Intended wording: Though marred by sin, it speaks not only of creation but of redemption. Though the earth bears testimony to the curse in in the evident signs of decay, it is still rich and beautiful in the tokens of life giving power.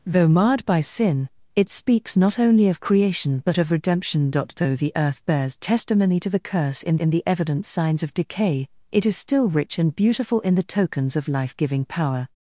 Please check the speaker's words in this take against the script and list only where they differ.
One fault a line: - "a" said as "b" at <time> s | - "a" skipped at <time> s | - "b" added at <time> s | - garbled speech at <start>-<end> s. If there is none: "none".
none